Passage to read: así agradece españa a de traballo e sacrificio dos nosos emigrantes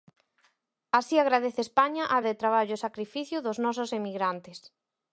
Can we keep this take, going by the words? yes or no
yes